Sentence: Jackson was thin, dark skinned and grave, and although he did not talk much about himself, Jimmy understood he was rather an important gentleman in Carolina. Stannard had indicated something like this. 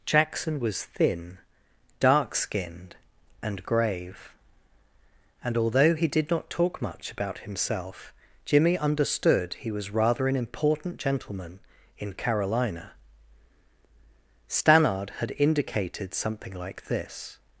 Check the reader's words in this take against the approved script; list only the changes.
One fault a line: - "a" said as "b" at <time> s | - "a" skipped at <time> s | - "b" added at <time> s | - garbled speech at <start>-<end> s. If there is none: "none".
none